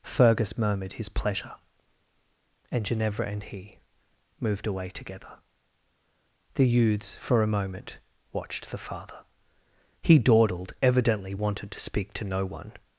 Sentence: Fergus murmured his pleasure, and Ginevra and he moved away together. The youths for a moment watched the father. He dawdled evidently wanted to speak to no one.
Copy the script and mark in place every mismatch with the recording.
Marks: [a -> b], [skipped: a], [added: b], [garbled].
Fergus murmured his pleasure, and Ginevra and he moved away together. The youths for a moment watched the father. He dawdled evidently wanted to speak to no one.